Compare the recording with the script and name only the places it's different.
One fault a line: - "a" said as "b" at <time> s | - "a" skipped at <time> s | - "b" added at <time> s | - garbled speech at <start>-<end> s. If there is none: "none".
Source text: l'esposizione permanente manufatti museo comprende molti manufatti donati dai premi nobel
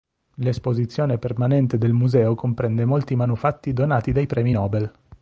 - "manufatti" said as "del" at 1.8 s